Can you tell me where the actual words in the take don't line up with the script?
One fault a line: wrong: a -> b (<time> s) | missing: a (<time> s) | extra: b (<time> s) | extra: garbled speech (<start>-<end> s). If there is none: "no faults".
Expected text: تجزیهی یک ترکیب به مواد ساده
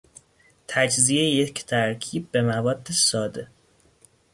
no faults